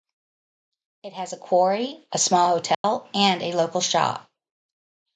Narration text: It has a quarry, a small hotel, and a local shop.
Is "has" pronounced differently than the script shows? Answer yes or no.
no